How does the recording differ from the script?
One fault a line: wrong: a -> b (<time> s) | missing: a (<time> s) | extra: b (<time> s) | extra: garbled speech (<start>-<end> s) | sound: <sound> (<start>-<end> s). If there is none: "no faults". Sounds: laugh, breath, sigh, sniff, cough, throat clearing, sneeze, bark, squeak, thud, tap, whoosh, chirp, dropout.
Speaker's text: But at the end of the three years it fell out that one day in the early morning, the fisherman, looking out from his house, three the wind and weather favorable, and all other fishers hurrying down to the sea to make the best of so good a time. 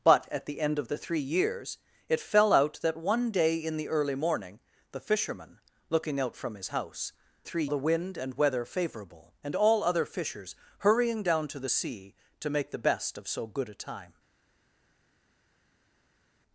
no faults